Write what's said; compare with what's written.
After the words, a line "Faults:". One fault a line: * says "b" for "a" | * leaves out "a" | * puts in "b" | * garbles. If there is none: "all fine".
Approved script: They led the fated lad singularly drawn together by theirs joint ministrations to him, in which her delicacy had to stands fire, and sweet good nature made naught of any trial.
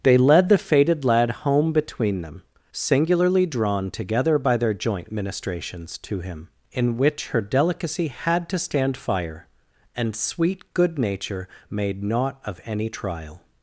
They led the fated lad home between them, singularly drawn together by their joint ministrations to him, in which her delicacy had to stand fire, and sweet good nature made naught of any trial.
Faults:
* puts in "home between them"
* says "their" for "theirs"
* says "stand" for "stands"